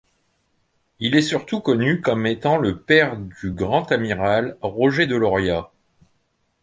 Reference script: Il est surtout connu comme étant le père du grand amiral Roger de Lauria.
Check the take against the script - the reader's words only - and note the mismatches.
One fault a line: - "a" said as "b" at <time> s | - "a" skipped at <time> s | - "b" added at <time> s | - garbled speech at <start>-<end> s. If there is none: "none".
none